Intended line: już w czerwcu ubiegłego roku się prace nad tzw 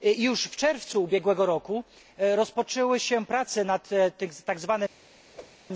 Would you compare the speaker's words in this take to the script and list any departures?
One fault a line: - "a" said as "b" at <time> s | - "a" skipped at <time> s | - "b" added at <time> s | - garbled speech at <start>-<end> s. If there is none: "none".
- "rozpoczęły" added at 2.2 s